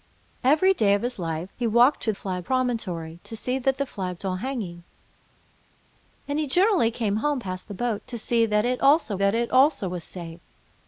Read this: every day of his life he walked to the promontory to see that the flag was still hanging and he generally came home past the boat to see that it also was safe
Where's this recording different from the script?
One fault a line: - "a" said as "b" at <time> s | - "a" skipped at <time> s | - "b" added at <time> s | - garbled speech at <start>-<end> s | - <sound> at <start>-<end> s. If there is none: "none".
- "the" said as "flag" at 2.1 s
- "was" skipped at 4.2 s
- "that it also" added at 9.1 s